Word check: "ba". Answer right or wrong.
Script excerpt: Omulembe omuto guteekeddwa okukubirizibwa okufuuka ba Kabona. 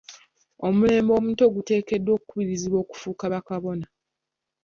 right